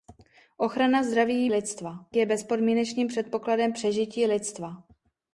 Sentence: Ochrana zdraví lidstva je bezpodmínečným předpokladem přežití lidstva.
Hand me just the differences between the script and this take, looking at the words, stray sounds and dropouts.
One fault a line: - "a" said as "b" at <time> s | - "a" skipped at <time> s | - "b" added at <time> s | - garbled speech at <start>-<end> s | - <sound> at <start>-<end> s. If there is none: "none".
none